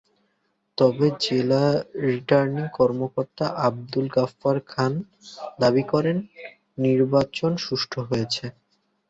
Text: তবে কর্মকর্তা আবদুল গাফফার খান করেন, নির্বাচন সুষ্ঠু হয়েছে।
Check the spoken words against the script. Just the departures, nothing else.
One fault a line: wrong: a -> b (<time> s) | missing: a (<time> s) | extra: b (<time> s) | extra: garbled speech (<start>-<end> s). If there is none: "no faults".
extra: জেলা রিটার্নিং (1.2 s)
extra: দাবি (5.6 s)